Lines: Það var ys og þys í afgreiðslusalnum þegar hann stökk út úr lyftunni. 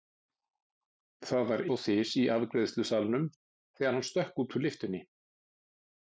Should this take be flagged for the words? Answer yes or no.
yes